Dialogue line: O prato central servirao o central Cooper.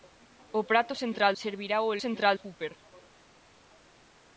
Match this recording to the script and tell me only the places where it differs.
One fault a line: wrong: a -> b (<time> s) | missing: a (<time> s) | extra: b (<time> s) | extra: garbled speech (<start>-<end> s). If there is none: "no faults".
no faults